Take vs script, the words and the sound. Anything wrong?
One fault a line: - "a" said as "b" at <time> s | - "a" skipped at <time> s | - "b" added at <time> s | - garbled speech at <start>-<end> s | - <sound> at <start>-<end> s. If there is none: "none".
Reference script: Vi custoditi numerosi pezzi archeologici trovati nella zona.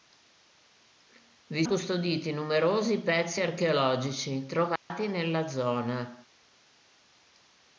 - dropout at 4.8-4.9 s